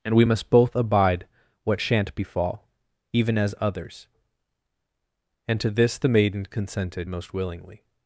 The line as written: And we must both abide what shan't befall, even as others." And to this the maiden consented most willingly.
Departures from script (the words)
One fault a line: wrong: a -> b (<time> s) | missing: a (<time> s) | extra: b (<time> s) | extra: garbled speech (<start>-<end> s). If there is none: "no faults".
no faults